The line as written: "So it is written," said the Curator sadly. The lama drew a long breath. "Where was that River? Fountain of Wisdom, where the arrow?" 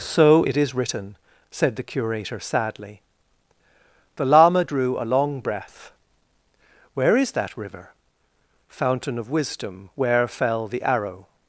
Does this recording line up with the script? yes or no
no